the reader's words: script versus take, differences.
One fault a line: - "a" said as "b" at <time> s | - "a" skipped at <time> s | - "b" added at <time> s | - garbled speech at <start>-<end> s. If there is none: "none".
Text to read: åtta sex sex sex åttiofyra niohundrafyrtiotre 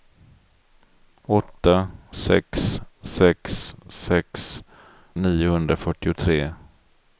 - "åttiofyra" skipped at 4.6 s